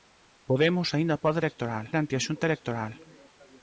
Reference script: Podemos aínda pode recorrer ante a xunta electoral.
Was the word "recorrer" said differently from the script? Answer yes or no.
yes